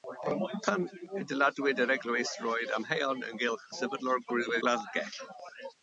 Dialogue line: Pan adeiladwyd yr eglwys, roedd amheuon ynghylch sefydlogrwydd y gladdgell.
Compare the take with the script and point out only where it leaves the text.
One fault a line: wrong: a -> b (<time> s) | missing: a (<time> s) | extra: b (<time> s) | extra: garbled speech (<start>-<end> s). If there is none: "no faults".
missing: y (4.6 s)